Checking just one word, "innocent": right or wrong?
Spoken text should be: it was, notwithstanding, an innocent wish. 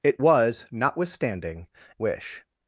wrong